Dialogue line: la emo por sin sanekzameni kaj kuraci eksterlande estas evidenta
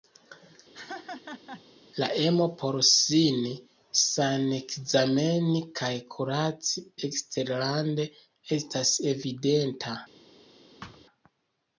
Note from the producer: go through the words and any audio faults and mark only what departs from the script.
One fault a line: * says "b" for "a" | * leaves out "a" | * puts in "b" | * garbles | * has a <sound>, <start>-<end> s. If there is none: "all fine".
* has a laugh, 0.7-1.6 s
* has a thud, 10.8-11.1 s